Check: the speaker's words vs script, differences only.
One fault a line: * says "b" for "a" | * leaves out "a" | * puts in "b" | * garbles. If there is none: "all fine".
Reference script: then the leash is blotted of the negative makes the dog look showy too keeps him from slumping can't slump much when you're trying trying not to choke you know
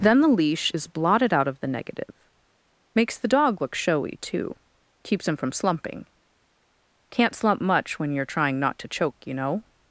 * puts in "out"
* leaves out "trying"